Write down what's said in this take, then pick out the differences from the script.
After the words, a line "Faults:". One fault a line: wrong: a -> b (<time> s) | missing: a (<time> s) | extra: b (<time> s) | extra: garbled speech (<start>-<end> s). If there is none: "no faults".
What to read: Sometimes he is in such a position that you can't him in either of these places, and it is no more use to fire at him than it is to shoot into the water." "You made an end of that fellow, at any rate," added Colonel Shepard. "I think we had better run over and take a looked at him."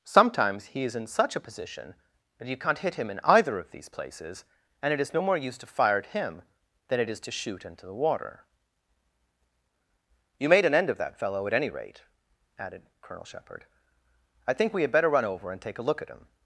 Sometimes he is in such a position that you can't hit him in either of these places, and it is no more use to fire at him than it is to shoot into the water." "You made an end of that fellow, at any rate," added Colonel Shepard. "I think we had better run over and take a look at him."
Faults:
extra: hit (2.8 s)
wrong: looked -> look (15.8 s)